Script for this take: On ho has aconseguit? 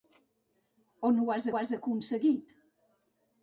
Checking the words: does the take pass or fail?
fail